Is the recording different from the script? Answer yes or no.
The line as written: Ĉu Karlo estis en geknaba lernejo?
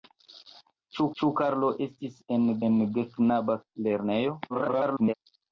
yes